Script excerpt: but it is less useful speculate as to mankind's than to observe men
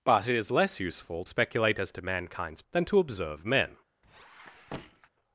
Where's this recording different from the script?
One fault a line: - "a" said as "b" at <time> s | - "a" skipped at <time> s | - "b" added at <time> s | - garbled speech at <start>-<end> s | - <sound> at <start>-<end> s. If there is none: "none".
- squeak at 4.0-5.1 s